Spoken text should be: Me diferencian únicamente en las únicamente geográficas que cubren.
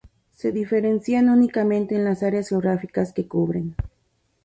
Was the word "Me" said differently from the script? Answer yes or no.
yes